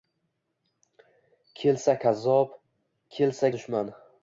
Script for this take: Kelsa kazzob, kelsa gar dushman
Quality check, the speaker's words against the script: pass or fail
fail